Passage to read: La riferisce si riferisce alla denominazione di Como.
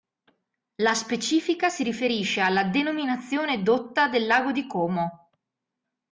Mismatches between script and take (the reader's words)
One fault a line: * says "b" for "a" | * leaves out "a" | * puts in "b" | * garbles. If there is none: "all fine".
* says "specifica" for "riferisce"
* puts in "dotta del lago"